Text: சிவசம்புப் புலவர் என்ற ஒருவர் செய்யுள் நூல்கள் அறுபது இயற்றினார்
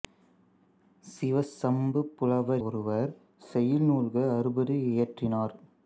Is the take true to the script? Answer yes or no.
no